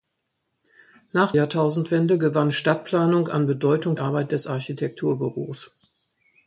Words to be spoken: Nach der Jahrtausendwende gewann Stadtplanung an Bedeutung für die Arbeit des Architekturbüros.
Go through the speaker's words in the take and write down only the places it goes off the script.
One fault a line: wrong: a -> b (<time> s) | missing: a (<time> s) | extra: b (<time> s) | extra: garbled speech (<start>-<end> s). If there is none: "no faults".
missing: der (1.3 s)
missing: für die (4.0 s)